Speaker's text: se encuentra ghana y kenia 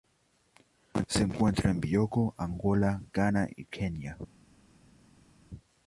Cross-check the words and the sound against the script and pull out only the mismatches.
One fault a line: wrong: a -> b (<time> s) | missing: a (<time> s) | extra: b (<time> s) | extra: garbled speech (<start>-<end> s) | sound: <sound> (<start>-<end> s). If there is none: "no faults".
extra: en bioko angola (1.7 s)